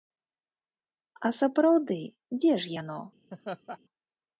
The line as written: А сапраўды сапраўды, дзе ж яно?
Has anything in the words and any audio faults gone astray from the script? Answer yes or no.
yes